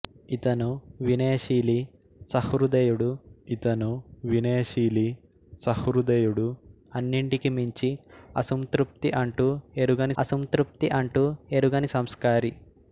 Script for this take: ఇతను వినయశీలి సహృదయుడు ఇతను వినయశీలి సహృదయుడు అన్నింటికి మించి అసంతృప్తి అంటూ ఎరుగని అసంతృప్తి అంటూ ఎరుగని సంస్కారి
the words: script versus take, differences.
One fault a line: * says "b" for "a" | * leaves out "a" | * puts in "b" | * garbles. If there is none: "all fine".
all fine